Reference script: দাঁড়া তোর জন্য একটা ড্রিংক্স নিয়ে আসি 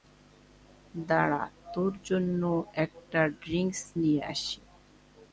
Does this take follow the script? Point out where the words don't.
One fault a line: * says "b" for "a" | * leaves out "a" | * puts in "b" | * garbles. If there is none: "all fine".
all fine